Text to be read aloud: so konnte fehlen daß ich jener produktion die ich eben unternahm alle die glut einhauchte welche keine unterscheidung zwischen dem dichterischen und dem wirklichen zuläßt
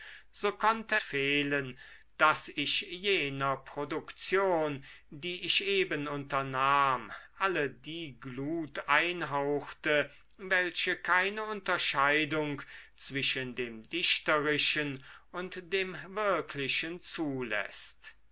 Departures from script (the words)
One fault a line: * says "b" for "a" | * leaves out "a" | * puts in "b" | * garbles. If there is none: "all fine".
all fine